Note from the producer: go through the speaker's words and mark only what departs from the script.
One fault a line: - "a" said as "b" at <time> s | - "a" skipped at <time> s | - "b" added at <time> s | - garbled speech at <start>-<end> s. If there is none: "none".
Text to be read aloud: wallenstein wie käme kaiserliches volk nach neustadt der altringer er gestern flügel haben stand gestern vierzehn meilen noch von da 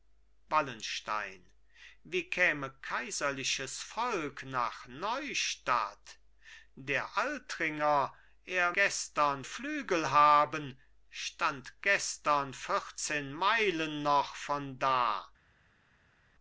none